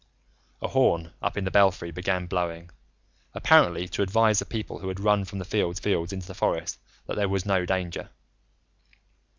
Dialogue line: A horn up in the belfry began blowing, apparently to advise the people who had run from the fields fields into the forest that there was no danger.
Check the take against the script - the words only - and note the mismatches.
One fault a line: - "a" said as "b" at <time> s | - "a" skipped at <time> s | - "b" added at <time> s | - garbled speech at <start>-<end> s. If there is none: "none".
none